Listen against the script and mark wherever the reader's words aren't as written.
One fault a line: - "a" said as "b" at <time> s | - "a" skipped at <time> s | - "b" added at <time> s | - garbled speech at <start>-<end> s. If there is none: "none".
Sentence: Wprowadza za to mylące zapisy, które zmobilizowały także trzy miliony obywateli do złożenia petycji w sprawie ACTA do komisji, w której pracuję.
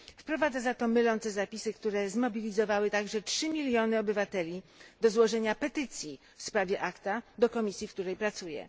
none